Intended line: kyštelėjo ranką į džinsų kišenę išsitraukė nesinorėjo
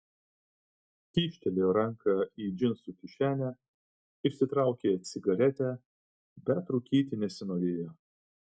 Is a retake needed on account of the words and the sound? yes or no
yes